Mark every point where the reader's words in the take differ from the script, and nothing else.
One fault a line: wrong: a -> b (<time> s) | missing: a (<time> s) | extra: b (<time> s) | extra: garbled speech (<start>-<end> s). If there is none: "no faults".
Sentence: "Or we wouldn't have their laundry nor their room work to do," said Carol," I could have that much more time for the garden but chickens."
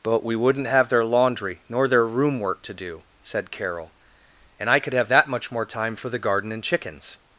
wrong: Or -> But (0.0 s)
extra: and (4.6 s)
wrong: but -> and (6.5 s)